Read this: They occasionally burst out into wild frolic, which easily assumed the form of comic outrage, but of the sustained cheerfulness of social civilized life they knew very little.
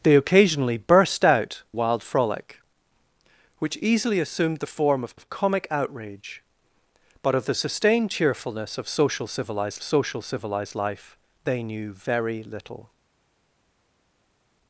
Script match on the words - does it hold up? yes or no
no